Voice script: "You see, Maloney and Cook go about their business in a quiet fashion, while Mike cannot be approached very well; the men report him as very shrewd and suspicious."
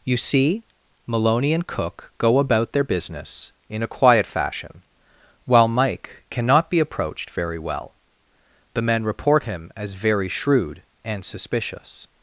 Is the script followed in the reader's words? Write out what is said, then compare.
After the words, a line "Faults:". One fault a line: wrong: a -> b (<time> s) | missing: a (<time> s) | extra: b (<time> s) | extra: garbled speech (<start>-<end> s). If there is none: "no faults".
"You see, Maloney and Cook go about their business in a quiet fashion, while Mike cannot be approached very well; the men report him as very shrewd and suspicious."
Faults:
no faults